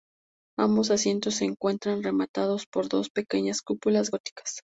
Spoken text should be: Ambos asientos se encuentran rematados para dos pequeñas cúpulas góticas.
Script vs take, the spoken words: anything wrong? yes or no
yes